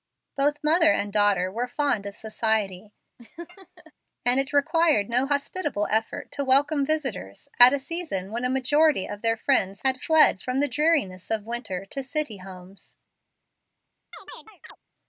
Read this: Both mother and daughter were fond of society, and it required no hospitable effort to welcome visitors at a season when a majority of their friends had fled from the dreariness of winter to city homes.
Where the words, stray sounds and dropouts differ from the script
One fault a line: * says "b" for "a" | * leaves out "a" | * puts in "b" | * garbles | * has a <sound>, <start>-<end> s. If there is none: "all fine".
* has a laugh, 3.2-3.9 s
* has a chirp, 14.1-14.8 s